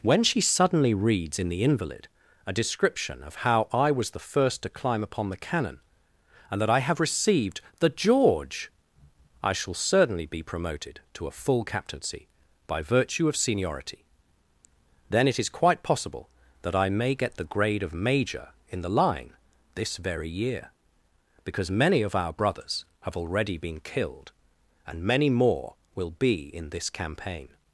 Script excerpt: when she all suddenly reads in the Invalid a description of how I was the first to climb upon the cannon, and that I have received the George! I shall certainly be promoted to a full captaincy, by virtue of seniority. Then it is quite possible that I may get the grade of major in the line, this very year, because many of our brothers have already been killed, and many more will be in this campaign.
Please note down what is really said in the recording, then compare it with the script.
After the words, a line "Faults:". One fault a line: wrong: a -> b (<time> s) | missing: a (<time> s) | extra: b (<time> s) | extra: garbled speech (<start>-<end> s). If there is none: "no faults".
when she suddenly reads in the Invalid a description of how I was the first to climb upon the cannon, and that I have received the George! I shall certainly be promoted to a full captaincy, by virtue of seniority. Then it is quite possible that I may get the grade of major in the line, this very year, because many of our brothers have already been killed, and many more will be in this campaign.
Faults:
missing: all (0.4 s)